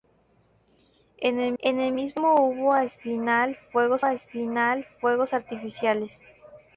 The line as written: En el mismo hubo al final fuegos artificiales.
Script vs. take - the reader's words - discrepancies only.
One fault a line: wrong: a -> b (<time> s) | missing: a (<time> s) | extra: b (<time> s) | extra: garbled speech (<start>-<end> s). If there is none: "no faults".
extra: en el (1.6 s)
extra: al final fuegos (4.0 s)